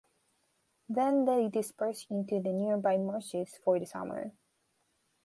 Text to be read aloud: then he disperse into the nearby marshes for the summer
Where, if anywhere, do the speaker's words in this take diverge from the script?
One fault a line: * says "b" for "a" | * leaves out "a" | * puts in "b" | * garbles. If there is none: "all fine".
* says "they" for "he"